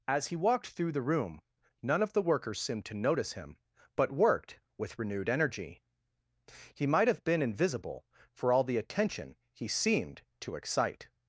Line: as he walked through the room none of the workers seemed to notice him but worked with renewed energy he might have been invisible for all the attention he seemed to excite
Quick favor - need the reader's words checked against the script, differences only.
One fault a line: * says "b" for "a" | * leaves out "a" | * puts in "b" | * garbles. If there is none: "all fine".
all fine